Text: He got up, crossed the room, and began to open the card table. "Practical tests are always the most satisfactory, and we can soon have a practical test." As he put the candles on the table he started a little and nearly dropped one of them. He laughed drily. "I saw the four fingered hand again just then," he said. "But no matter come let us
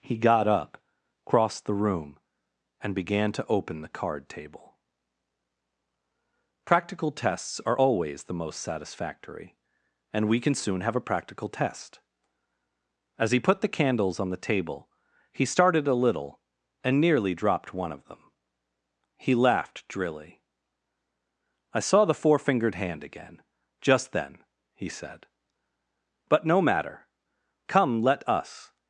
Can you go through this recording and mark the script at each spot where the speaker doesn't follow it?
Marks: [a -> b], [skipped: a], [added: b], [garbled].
He got up, crossed the room, and began to open the card table. "Practical tests are always the most satisfactory, and we can soon have a practical test." As he put the candles on the table he started a little and nearly dropped one of them. He laughed drily. "I saw the four fingered hand again just then," he said. "But no matter come let us